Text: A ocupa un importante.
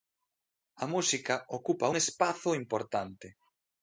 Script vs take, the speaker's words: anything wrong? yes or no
yes